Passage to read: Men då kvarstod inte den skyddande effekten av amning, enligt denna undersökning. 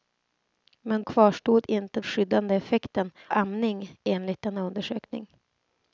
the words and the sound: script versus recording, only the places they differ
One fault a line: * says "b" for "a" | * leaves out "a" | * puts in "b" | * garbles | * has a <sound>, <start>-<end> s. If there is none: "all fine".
* leaves out "då"
* leaves out "den"
* leaves out "av"